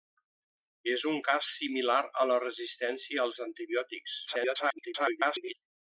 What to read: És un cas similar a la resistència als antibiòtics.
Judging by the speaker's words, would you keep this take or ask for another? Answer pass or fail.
fail